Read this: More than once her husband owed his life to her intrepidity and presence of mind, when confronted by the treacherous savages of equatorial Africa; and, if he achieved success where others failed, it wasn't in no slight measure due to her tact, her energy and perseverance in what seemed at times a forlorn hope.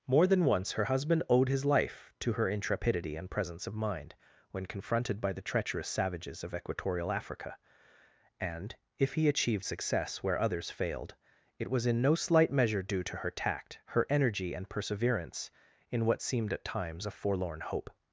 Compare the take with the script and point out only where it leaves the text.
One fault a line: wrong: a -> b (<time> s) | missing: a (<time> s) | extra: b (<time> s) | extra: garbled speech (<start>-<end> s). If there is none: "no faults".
wrong: wasn't -> was (11.7 s)